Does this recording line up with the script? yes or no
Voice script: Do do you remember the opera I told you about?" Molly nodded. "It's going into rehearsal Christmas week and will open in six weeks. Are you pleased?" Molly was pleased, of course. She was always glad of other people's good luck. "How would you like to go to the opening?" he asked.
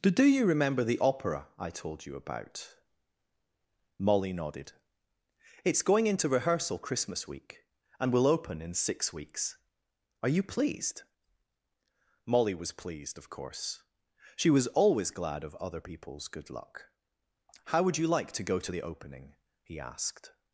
yes